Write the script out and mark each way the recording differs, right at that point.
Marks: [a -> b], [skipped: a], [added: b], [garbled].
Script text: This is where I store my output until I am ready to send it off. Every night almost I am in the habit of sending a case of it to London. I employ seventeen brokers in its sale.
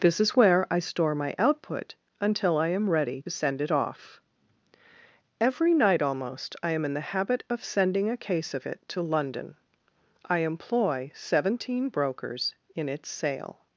This is where I store my output until I am ready [skipped: to] send it off. Every night almost I am in the habit of sending a case of it to London. I employ seventeen brokers in its sale.